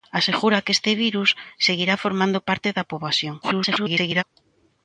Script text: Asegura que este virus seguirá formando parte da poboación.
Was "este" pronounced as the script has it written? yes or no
yes